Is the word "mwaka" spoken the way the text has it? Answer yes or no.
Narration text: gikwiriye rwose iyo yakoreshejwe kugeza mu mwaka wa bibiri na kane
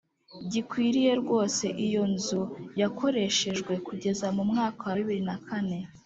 yes